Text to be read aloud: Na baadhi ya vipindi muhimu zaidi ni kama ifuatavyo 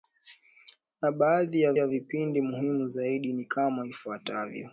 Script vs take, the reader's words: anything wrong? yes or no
yes